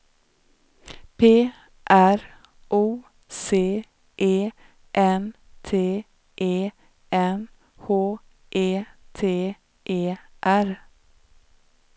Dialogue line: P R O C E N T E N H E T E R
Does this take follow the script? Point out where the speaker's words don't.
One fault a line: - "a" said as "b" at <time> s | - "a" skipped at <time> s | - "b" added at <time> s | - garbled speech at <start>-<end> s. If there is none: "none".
none